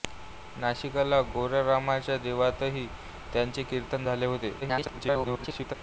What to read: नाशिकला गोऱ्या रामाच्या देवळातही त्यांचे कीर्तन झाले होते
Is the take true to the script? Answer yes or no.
no